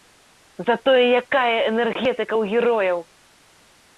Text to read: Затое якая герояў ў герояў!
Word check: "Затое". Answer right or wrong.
right